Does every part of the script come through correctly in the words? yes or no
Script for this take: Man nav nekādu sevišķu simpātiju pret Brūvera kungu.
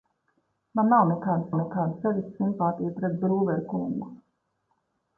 no